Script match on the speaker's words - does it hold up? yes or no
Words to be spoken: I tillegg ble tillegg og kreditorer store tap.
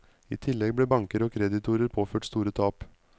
no